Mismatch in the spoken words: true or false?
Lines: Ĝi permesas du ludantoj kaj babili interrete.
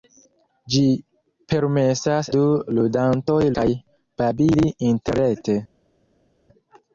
false